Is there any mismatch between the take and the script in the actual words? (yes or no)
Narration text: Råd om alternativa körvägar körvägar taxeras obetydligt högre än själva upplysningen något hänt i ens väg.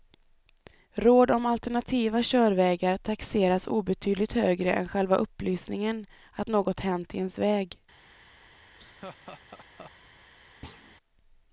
yes